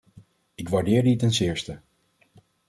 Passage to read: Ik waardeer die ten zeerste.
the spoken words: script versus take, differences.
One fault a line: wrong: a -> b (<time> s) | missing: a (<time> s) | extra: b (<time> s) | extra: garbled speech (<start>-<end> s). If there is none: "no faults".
no faults